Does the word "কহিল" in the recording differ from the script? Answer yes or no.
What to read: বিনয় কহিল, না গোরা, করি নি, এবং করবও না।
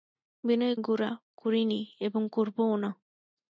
yes